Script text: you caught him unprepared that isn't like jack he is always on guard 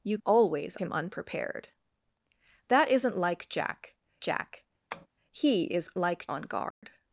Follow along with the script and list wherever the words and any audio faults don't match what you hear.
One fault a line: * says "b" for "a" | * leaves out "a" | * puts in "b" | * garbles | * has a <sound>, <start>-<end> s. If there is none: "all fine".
* says "always" for "caught"
* puts in "jack"
* has a tap, 4.9-5.1 s
* says "like" for "always"
* has a dropout, 6.7-6.8 s